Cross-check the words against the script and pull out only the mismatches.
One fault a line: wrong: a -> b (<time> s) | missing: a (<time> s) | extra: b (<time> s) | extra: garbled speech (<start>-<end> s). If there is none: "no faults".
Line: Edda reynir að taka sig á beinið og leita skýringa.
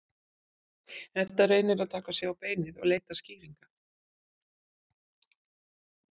no faults